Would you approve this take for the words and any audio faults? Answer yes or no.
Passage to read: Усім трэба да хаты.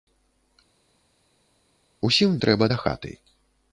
yes